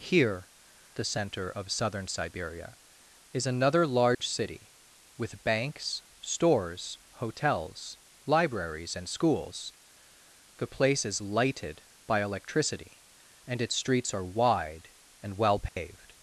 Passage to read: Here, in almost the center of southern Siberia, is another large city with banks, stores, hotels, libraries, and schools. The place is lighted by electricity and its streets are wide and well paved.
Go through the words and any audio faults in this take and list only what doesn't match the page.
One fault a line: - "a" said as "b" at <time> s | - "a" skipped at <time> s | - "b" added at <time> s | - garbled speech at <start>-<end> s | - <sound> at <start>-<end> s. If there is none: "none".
- "in almost" skipped at 0.5 s
- dropout at 4.1-4.2 s
- dropout at 15.7-15.8 s